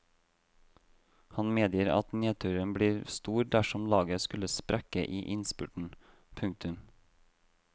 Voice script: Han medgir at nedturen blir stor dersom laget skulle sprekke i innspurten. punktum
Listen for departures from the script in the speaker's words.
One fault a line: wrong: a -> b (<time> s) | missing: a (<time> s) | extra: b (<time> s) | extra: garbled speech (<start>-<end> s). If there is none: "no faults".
no faults